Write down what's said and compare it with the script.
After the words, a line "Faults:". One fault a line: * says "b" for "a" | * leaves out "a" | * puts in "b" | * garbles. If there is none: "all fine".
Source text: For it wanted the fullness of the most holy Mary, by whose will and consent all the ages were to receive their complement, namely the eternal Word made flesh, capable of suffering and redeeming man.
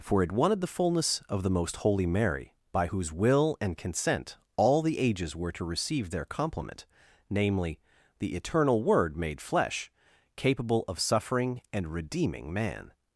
For it wanted the fullness of the most holy Mary, by whose will and consent all the ages were to receive their complement, namely the eternal Word made flesh, capable of suffering and redeeming man.
Faults:
all fine